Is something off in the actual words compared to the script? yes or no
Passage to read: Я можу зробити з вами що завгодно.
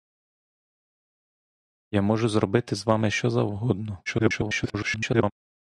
yes